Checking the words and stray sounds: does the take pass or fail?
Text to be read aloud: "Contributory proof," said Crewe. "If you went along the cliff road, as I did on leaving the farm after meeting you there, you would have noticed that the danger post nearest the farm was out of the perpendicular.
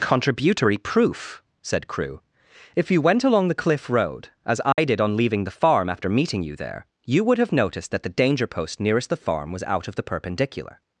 fail